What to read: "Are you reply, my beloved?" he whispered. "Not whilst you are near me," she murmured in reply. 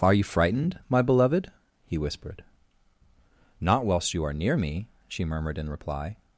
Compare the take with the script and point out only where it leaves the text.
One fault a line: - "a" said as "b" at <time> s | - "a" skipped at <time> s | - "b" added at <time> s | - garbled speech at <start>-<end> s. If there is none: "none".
- "reply" said as "frightened" at 0.2 s